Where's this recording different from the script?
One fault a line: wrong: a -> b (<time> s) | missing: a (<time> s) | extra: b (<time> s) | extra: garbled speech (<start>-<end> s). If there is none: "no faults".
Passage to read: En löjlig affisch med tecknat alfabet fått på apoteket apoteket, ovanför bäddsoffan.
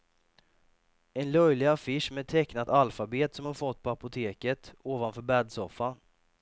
extra: som hon (3.3 s)
missing: apoteket (4.7 s)